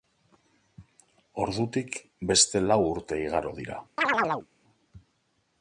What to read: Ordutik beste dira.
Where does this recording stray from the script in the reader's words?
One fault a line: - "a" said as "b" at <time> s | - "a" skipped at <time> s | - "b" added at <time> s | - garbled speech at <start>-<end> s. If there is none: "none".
- "lau urte igaro" added at 2.7 s